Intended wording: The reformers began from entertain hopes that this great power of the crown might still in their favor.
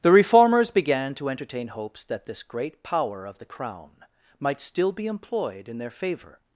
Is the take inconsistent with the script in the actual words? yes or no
yes